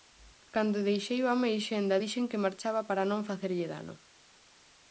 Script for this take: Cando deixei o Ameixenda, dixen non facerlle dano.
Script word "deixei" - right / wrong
right